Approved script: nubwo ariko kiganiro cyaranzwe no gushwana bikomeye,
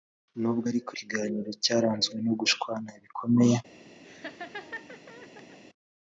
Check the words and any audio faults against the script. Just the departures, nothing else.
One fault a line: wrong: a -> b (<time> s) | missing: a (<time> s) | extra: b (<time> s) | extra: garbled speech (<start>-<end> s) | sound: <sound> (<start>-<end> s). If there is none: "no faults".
sound: laugh (4.0-5.6 s)